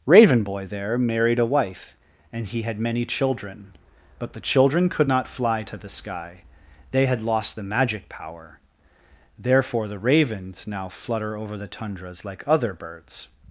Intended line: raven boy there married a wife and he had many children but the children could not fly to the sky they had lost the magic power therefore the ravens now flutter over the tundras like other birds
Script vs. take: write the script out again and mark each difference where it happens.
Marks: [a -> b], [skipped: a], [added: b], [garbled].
raven boy there married a wife and he had many children but the children could not fly to the sky they had lost the magic power therefore the ravens now flutter over the tundras like other birds